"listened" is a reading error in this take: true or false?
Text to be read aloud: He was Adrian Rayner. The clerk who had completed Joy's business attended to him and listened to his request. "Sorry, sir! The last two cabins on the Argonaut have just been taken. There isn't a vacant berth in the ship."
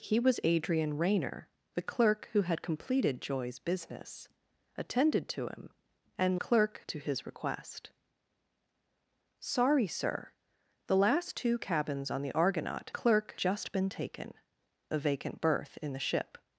true